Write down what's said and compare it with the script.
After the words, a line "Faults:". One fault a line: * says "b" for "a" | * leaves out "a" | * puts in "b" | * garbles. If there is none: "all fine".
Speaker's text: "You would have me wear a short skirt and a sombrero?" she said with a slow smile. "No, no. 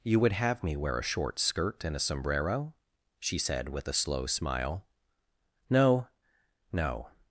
"You would have me wear a short skirt and a sombrero?" she said with a slow smile. "No, no.
Faults:
all fine